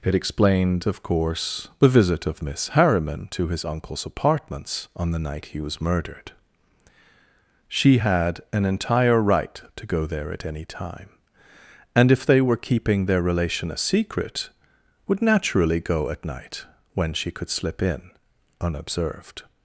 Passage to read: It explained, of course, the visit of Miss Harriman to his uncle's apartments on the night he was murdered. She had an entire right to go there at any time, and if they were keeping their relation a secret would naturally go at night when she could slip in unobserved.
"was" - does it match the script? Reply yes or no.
yes